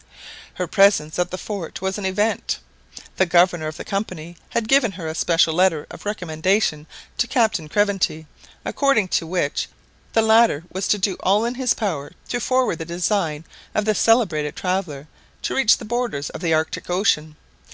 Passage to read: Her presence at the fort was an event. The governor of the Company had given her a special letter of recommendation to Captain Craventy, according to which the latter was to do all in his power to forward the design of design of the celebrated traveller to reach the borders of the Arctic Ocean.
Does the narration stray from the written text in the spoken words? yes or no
yes